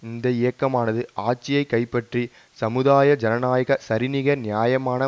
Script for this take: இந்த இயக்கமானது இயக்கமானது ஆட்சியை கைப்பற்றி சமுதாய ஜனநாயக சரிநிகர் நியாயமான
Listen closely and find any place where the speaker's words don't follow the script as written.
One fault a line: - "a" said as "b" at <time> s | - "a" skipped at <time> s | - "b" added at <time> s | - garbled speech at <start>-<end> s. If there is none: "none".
- "இயக்கமானது" skipped at 1.0 s